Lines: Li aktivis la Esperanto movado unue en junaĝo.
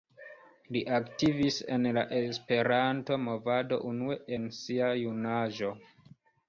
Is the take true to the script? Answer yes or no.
no